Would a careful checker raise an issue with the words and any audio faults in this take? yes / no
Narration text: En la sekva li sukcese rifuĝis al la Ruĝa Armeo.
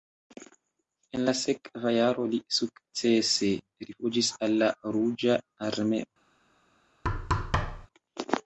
yes